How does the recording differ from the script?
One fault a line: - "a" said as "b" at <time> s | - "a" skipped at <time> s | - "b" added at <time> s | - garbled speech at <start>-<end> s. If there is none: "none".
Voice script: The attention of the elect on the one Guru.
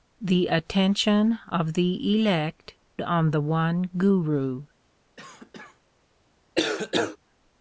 none